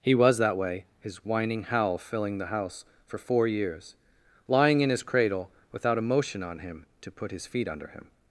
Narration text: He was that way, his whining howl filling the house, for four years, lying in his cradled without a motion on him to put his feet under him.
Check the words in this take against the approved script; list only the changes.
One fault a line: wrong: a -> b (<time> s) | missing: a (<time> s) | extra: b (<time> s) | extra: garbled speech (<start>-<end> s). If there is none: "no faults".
wrong: cradled -> cradle (5.0 s)